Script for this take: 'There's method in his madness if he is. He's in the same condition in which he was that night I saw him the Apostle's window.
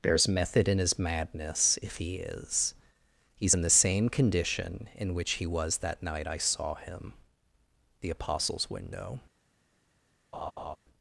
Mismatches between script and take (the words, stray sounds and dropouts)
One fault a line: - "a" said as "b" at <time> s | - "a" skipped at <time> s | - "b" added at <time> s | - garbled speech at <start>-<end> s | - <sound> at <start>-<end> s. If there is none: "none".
- laugh at 10.3-10.8 s